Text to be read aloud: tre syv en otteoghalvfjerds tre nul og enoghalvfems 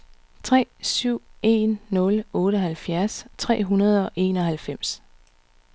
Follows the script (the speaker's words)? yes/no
no